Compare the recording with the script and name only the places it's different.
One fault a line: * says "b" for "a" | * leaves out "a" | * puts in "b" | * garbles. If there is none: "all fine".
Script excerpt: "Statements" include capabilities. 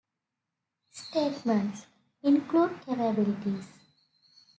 all fine